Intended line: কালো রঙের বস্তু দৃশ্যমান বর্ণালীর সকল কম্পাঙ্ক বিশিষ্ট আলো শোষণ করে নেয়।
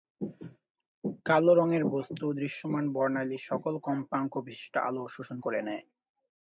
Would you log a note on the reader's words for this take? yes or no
no